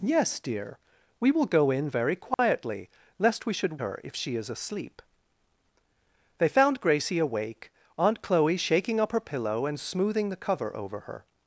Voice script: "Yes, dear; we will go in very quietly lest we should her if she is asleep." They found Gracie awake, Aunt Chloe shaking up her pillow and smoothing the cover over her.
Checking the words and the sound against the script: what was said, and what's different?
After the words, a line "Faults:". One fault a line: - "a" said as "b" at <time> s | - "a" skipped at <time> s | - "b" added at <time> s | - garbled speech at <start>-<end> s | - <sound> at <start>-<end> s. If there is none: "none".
"Yes, dear; we will go in very quietly lest we should her if she is asleep." They found Gracie awake, Aunt Chloe shaking up her pillow and smoothing the cover over her.
Faults:
- dropout at 2.3-2.4 s